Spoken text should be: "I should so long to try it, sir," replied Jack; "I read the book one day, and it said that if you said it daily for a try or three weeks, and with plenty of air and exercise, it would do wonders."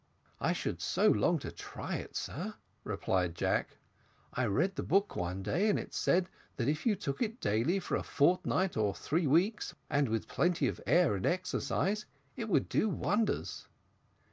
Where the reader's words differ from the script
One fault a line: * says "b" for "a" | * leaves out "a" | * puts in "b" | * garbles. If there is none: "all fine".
* says "took" for "said"
* says "fortnight" for "try"